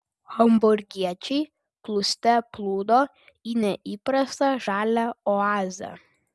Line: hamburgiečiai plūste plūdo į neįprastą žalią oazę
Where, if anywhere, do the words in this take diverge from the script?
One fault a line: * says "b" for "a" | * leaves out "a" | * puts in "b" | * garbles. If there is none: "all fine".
all fine